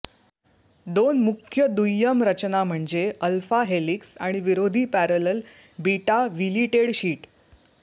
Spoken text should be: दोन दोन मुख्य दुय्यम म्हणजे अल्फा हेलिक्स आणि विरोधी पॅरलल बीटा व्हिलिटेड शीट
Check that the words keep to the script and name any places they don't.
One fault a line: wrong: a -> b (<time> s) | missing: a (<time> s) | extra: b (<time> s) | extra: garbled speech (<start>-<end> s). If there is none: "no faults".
missing: दोन (1.2 s)
extra: रचना (2.2 s)